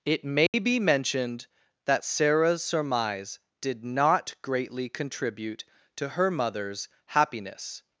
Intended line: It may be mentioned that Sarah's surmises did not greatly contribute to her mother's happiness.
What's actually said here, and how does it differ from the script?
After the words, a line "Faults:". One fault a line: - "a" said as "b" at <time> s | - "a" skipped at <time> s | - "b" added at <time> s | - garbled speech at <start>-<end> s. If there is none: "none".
It may be mentioned that Sarah's surmise did not greatly contribute to her mother's happiness.
Faults:
- "surmises" said as "surmise" at 2.6 s